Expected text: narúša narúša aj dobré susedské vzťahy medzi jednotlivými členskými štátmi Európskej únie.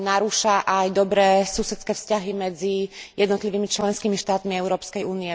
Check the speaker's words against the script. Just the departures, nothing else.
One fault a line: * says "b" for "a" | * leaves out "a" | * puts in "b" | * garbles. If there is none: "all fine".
* leaves out "narúša"